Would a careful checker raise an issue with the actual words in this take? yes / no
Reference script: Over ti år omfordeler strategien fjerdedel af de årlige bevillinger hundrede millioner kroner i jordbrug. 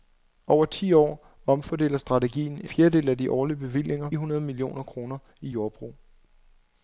no